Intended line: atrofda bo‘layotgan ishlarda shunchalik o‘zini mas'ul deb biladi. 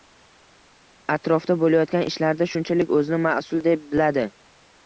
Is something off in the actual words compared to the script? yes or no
no